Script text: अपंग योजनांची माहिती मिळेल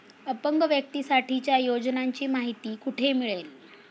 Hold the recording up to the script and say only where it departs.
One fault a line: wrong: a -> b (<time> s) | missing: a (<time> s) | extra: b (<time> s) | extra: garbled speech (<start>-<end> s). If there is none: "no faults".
extra: व्यक्तीसाठीच्या (0.6 s)
extra: कुठे (2.7 s)